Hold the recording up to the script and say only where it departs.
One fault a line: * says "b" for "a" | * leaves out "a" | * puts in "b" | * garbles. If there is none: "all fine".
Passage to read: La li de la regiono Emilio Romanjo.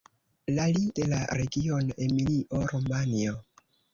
all fine